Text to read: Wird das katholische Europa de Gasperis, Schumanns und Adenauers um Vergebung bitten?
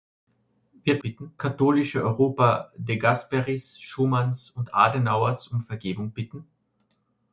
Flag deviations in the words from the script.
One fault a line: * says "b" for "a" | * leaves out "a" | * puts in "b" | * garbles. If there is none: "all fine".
* says "bitten" for "das"